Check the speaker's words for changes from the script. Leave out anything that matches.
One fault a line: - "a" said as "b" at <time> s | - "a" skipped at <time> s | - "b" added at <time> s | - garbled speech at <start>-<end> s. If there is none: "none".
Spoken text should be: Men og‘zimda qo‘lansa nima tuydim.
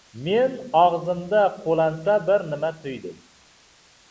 - "bir" added at 2.3 s